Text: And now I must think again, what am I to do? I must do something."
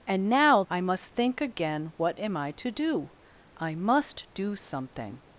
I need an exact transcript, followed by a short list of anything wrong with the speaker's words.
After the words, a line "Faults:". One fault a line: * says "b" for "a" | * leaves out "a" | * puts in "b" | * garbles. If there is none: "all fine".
And now I must think again, what am I to do? I must do something."
Faults:
all fine